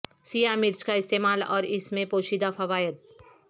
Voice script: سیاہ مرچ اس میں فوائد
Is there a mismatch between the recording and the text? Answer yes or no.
yes